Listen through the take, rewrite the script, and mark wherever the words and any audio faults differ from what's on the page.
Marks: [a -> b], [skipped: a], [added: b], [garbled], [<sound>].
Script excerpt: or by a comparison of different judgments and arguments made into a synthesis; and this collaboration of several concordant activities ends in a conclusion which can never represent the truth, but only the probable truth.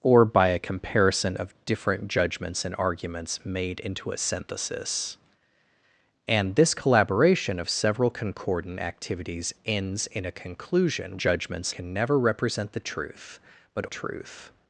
or by a comparison of different judgments and arguments made into a synthesis; and this collaboration of several concordant activities ends in a conclusion [which -> judgments] can never represent the truth, but [skipped: only the probable] truth.